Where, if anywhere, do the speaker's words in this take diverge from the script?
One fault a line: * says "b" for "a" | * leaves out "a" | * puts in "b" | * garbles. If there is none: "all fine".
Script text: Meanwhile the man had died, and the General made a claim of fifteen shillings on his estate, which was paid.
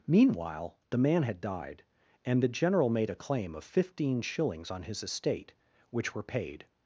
* says "were" for "was"